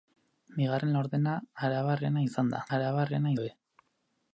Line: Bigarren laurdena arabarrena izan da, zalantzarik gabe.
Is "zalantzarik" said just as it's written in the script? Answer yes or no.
no